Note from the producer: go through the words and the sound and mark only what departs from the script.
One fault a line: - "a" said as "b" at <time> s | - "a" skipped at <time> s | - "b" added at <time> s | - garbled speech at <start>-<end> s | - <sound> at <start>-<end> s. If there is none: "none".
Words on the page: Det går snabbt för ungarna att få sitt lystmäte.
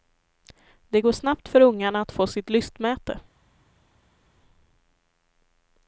none